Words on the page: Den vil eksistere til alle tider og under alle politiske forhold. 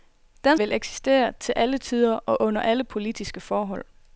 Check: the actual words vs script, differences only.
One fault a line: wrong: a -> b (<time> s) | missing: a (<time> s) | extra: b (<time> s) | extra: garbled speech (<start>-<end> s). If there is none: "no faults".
no faults